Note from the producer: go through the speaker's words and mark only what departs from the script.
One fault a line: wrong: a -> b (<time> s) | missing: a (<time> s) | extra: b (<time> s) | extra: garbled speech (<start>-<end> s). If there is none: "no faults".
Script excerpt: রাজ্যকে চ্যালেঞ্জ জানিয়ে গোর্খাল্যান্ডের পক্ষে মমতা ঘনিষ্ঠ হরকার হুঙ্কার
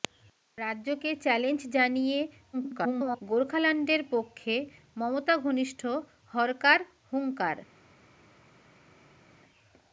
extra: garbled speech (2.5-3.2 s)